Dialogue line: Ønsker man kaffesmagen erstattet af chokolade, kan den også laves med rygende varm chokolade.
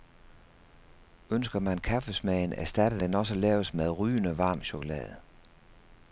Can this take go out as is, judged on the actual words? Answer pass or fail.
fail